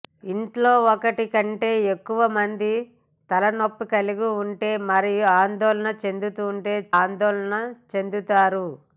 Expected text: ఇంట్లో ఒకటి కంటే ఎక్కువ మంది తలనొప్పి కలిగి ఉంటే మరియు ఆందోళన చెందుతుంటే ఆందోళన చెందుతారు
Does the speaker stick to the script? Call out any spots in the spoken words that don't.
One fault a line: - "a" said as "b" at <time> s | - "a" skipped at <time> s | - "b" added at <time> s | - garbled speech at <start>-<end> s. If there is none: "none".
none